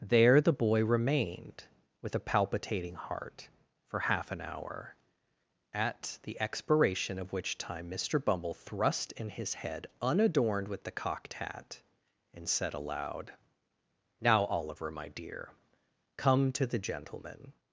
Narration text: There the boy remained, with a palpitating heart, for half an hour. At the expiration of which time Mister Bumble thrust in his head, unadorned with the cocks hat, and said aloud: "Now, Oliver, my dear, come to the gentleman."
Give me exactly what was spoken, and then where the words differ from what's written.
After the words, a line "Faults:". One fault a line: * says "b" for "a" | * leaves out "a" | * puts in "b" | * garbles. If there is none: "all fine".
There the boy remained, with a palpitating heart, for half an hour. At the expiration of which time Mister Bumble thrust in his head, unadorned with the cocked hat, and said aloud: "Now, Oliver, my dear, come to the gentleman."
Faults:
* says "cocked" for "cocks"